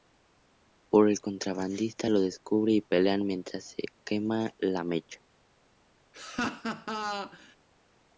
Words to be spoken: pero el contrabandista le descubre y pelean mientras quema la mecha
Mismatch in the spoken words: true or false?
true